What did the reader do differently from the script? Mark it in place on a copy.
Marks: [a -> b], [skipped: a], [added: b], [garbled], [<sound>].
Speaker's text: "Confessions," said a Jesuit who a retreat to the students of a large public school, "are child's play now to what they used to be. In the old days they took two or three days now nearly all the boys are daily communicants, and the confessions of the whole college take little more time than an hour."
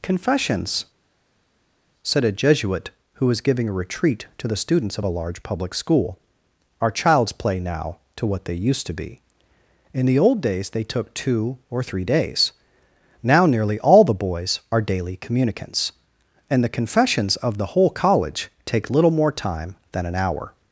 "Confessions," said a Jesuit who [added: was giving] a retreat to the students of a large public school, "are child's play now to what they used to be. In the old days they took two or three days now nearly all the boys are daily communicants, and the confessions of the whole college take little more time than an hour."